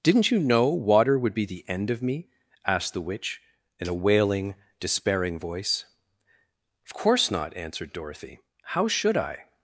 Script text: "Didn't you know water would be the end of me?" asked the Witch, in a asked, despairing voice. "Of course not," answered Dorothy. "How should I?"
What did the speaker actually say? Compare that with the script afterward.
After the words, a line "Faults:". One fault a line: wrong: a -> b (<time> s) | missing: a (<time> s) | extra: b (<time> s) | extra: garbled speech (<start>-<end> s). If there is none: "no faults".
"Didn't you know water would be the end of me?" asked the Witch, in a wailing, despairing voice. "Of course not," answered Dorothy. "How should I?"
Faults:
wrong: asked -> wailing (3.9 s)